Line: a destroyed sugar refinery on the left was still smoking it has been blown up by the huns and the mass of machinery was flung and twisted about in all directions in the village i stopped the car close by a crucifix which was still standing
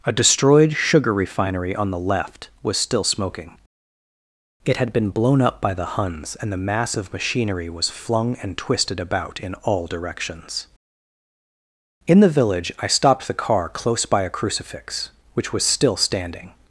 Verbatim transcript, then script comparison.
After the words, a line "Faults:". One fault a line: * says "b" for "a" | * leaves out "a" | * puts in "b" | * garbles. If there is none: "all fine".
a destroyed sugar refinery on the left was still smoking it had been blown up by the huns and the mass of machinery was flung and twisted about in all directions in the village i stopped the car close by a crucifix which was still standing
Faults:
* says "had" for "has"